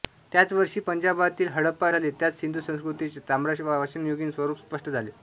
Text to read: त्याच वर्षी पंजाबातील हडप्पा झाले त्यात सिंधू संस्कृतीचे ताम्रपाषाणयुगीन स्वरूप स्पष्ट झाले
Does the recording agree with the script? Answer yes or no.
yes